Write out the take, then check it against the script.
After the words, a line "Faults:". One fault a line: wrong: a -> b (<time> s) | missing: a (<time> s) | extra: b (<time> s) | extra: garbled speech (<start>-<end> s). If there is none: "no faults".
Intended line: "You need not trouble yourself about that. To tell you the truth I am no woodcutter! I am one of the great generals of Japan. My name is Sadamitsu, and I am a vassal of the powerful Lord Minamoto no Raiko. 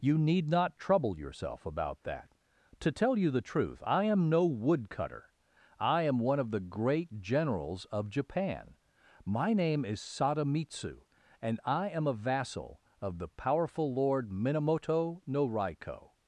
"You need not trouble yourself about that. To tell you the truth I am no woodcutter! I am one of the great generals of Japan. My name is Sadamitsu, and I am a vassal of the powerful Lord Minamoto no Raiko.
Faults:
no faults